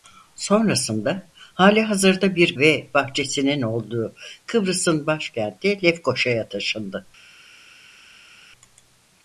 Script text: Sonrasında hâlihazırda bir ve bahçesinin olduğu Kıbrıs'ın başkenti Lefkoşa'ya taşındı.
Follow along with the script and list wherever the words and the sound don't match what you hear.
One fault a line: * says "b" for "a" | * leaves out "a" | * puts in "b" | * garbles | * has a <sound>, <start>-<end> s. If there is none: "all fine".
all fine